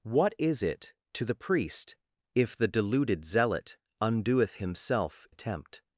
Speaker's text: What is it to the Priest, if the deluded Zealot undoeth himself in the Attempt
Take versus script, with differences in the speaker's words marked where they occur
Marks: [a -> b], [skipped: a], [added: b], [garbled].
What is it to the Priest, if the deluded Zealot undoeth himself [skipped: in the] Attempt